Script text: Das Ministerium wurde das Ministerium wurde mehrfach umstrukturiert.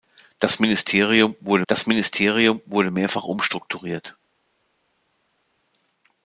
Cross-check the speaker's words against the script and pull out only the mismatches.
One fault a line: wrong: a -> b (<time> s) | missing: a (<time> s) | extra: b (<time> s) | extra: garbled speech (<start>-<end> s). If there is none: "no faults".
no faults